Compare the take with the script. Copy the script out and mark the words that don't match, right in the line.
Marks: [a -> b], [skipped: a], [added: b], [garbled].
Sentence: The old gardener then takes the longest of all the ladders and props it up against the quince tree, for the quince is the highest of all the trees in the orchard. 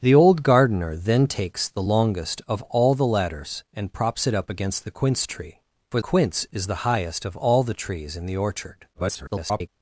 The old gardener then takes the longest of all the ladders and props it up against the quince tree, for [skipped: the] quince is the highest of all the trees in the orchard. [garbled]